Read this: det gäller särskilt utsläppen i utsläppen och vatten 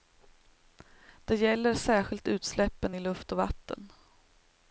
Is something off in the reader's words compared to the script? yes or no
yes